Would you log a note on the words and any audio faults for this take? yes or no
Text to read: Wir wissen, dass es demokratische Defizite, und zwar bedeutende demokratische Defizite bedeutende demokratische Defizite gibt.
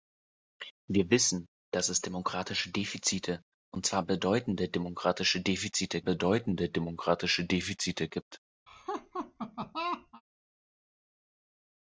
yes